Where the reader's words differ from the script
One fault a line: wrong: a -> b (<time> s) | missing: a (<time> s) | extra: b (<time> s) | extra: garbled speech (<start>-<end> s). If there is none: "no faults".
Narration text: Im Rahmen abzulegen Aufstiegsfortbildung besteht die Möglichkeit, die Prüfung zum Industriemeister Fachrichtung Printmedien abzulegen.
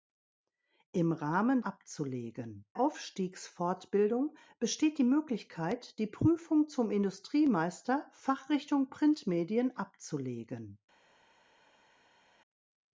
no faults